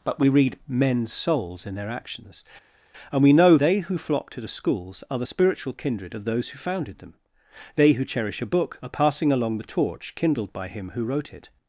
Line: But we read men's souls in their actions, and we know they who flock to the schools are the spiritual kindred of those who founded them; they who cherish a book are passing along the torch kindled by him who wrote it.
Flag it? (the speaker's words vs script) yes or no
no